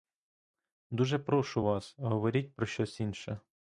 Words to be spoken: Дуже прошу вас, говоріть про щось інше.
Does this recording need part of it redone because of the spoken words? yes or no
no